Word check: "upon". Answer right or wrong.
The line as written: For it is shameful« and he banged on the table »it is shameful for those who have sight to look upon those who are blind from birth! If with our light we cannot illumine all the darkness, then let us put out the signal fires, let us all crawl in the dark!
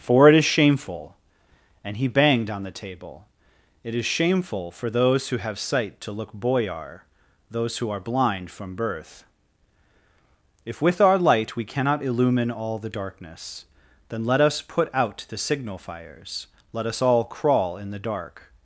wrong